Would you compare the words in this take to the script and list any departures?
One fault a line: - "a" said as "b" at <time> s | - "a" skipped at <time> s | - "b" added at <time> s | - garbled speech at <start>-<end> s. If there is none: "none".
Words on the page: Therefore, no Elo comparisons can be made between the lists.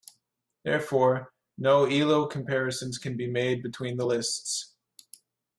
none